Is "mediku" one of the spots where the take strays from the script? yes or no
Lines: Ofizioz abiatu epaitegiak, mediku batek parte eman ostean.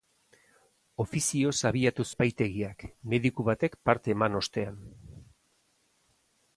no